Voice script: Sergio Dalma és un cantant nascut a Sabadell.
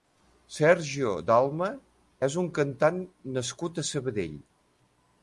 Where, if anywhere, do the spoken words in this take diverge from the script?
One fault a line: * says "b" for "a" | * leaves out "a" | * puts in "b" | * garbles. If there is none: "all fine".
all fine